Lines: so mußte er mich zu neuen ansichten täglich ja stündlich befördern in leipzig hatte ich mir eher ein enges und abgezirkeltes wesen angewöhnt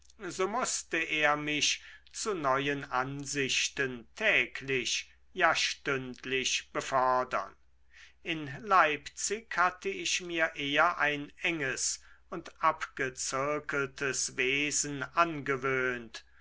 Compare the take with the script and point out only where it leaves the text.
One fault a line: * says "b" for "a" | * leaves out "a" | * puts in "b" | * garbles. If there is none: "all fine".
all fine